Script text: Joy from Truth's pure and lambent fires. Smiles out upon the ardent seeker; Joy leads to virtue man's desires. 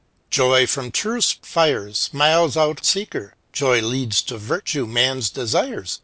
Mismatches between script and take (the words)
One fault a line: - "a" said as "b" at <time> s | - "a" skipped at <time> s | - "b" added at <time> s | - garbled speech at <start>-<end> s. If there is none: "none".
- "pure and lambent" skipped at 1.4 s
- "upon the ardent" skipped at 2.8 s